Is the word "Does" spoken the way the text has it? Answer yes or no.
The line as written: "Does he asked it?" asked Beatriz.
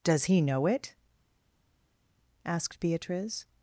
yes